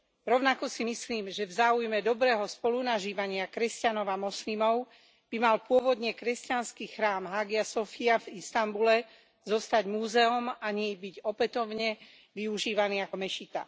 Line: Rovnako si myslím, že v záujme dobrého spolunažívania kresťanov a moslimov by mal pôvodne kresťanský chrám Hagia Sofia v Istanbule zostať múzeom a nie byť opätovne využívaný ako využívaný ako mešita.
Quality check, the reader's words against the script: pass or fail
fail